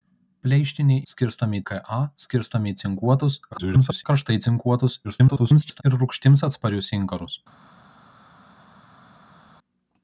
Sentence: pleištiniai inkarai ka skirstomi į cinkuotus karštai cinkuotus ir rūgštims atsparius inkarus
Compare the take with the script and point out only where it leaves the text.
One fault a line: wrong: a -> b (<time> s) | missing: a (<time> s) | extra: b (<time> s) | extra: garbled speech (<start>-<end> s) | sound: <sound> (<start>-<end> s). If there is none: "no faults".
wrong: inkarai -> skirstomi (1.1 s)
extra: garbled speech (3.5-4.0 s)
extra: garbled speech (5.0-5.8 s)